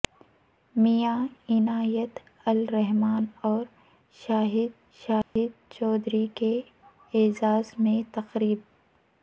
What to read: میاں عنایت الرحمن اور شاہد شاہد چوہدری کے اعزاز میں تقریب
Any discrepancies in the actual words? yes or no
no